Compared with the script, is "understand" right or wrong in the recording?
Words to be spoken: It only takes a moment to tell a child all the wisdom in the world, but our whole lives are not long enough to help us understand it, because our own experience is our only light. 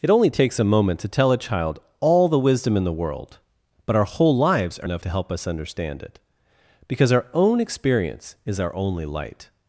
right